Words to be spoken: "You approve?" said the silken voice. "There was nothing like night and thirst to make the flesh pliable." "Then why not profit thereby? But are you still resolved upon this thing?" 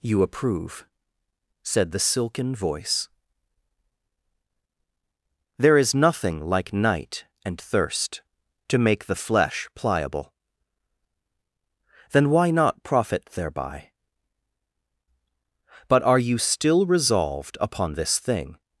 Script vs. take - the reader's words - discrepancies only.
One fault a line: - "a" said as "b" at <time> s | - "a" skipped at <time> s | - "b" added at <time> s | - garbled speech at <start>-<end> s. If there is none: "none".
- "was" said as "is" at 5.8 s